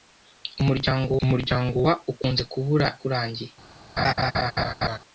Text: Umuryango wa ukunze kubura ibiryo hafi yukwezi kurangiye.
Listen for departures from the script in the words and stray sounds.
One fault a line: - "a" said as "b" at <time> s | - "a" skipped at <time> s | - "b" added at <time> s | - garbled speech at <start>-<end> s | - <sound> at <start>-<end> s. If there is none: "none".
- "umuryango" added at 1.2 s
- "ibiryo hafi yukwezi" skipped at 2.9 s
- laugh at 4.0-5.0 s